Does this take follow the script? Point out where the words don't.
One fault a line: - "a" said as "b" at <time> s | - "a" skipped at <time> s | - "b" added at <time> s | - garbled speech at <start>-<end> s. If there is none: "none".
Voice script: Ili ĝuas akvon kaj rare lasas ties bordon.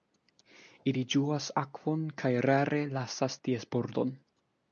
none